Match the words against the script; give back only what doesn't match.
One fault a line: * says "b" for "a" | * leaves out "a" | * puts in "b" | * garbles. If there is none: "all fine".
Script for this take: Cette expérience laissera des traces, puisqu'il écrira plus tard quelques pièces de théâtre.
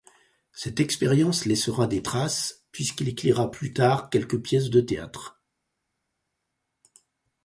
all fine